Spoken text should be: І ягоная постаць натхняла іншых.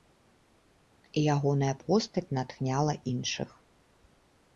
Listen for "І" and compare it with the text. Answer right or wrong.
right